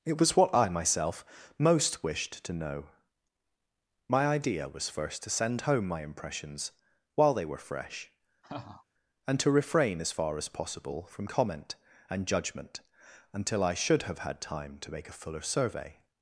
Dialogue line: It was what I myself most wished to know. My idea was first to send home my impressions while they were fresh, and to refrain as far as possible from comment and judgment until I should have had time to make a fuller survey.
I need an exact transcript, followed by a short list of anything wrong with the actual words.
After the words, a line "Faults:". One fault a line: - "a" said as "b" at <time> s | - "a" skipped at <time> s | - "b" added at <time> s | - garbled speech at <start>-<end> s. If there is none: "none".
It was what I myself most wished to know. My idea was first to send home my impressions while they were fresh, and to refrain as far as possible from comment and judgment until I should have had time to make a fuller survey.
Faults:
none